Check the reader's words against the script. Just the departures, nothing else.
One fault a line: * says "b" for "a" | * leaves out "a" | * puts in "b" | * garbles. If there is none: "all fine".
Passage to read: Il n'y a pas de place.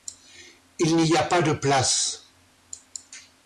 all fine